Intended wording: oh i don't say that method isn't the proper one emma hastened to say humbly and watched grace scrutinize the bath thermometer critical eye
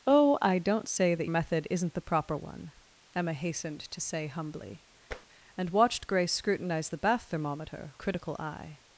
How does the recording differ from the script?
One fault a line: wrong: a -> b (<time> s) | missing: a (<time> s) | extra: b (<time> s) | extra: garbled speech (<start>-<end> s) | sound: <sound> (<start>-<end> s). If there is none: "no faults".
sound: tap (5.1-5.3 s)